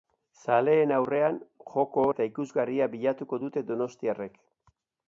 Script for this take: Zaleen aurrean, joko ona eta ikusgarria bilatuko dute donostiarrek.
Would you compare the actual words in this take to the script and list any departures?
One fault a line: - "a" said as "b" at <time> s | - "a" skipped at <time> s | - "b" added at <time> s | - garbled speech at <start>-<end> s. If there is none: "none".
- "ona" skipped at 2.0 s